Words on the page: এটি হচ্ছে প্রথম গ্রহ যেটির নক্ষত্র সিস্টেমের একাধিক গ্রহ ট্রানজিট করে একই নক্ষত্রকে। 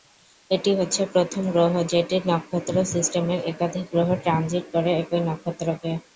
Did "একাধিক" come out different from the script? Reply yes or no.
no